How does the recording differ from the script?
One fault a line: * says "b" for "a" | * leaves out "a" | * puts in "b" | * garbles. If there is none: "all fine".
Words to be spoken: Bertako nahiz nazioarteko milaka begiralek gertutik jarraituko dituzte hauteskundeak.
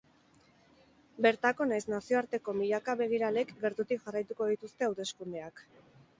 all fine